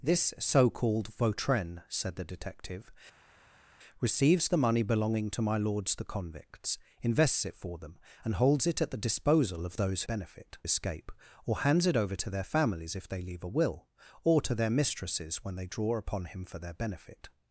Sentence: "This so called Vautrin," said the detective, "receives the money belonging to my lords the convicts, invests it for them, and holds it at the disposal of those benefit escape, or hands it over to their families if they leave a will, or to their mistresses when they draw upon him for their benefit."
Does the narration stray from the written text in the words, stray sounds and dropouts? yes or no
no